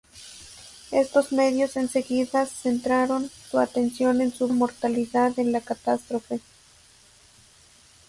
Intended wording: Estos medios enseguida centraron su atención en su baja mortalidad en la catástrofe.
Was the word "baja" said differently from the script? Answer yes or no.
yes